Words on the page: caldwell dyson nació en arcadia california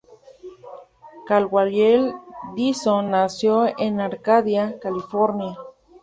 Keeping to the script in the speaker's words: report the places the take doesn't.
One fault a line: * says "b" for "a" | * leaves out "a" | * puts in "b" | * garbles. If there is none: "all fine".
all fine